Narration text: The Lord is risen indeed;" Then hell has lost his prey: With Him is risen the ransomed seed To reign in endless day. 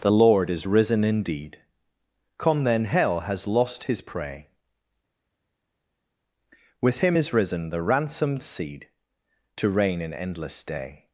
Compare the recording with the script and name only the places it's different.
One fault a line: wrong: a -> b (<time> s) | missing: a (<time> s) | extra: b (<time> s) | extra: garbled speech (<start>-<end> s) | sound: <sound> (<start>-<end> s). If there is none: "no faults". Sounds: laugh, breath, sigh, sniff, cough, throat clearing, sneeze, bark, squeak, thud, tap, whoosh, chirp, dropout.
extra: come (2.4 s)